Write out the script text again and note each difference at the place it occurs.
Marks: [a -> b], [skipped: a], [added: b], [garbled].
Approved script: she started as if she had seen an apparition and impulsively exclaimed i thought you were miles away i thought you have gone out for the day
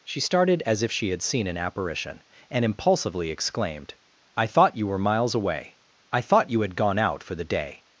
she started as if she had seen an apparition and impulsively exclaimed i thought you were miles away i thought you [have -> had] gone out for the day